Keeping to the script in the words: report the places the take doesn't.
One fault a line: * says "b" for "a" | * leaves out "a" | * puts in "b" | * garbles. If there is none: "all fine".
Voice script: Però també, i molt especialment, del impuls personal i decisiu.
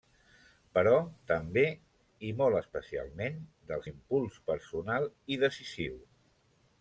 all fine